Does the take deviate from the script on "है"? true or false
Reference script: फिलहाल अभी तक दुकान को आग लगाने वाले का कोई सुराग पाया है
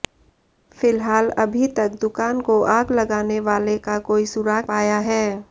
false